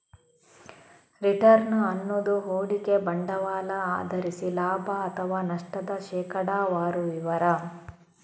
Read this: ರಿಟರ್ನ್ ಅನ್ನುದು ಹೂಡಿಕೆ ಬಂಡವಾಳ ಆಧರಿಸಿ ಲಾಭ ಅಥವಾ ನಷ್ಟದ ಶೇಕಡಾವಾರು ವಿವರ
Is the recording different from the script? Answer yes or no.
no